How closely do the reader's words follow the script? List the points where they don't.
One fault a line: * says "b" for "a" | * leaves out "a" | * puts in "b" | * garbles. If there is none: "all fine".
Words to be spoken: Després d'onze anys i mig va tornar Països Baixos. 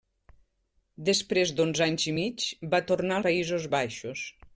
all fine